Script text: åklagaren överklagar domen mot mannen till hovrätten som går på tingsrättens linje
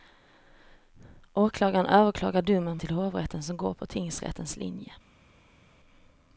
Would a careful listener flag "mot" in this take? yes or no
yes